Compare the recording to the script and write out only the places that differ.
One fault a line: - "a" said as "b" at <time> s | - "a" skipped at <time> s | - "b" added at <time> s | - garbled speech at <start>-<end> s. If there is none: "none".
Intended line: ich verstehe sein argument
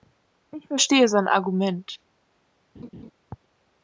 none